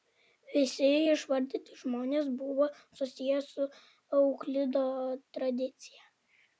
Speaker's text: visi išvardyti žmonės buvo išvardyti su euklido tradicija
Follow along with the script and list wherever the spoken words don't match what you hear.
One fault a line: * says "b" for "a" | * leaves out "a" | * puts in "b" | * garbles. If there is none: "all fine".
* says "susiję" for "išvardyti"